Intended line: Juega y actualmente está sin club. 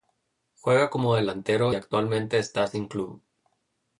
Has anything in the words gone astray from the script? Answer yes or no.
yes